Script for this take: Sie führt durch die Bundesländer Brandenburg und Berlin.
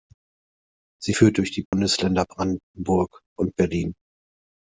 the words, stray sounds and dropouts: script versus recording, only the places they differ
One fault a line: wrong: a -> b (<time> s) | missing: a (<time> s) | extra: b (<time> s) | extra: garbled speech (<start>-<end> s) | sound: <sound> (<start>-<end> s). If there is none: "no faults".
sound: dropout (1.7-1.7 s)